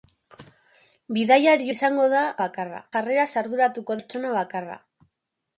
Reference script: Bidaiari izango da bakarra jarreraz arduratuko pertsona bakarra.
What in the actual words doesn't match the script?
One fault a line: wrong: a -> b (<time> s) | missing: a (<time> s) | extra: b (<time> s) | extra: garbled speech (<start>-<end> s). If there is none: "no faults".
no faults